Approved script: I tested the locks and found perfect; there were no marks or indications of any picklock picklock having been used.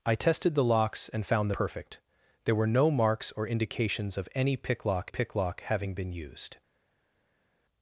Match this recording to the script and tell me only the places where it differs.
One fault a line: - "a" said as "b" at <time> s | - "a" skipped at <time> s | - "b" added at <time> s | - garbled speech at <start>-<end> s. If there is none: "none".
none